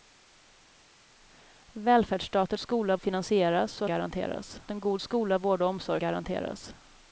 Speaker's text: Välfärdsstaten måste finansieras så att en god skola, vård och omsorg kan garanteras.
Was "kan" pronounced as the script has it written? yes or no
no